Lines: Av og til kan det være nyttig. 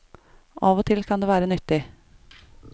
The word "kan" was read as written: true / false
true